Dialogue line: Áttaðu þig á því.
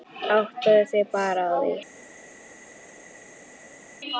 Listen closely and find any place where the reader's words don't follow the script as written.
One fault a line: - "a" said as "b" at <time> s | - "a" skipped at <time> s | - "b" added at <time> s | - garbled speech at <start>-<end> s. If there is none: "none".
- "bara" added at 1.2 s